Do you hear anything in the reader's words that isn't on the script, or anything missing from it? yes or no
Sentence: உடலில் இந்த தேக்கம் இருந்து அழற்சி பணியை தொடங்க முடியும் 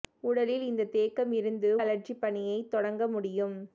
no